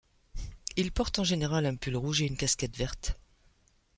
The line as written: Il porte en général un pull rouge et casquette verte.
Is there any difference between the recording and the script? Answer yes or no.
yes